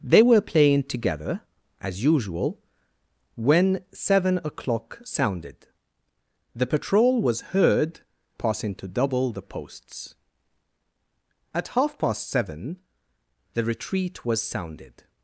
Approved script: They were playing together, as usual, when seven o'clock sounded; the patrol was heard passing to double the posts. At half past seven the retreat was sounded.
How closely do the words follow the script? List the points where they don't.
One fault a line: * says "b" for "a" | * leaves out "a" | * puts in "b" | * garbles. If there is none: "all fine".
all fine